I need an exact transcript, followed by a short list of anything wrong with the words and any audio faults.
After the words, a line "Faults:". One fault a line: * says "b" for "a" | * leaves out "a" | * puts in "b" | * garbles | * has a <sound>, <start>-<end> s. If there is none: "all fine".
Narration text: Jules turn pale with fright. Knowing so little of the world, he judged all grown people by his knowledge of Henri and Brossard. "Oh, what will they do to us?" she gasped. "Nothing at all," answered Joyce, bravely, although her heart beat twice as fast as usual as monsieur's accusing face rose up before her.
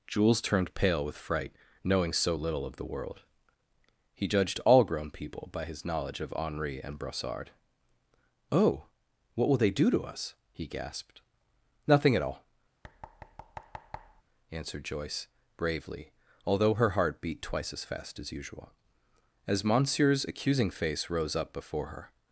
Jules turned pale with fright. Knowing so little of the world, he judged all grown people by his knowledge of Henri and Brossard. "Oh, what will they do to us?" he gasped. "Nothing at all," answered Joyce, bravely, although her heart beat twice as fast as usual as monsieur's accusing face rose up before her.
Faults:
* says "turned" for "turn"
* says "he" for "she"
* has a thud, 12.8-14.2 s